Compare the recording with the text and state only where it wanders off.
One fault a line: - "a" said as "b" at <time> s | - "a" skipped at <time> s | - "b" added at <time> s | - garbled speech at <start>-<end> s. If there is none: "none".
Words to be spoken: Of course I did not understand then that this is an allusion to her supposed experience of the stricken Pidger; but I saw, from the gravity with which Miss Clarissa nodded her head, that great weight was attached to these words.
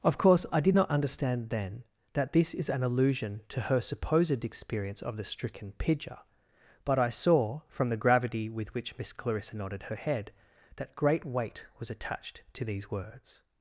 none